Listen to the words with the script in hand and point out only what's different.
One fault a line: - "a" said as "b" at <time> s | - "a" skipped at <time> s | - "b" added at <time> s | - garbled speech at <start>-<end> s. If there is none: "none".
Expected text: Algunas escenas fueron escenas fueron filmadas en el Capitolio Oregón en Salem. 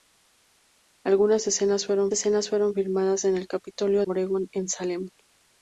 none